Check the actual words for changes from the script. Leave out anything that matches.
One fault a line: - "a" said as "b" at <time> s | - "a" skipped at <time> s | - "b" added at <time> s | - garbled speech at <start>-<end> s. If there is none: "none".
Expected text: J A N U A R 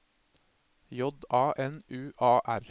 none